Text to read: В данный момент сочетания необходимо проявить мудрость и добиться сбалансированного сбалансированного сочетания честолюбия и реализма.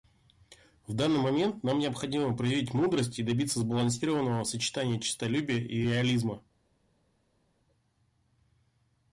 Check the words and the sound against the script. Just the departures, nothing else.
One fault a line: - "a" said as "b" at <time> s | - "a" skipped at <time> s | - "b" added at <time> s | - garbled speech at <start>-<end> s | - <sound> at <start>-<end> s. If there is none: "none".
- "сочетания" said as "нам" at 1.6 s
- "сбалансированного" skipped at 4.4 s